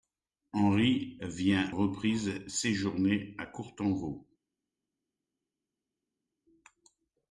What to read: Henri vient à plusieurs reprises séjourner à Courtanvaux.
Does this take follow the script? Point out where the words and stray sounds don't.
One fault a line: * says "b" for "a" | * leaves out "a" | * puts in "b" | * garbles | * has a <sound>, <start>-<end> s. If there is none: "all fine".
* leaves out "à plusieurs"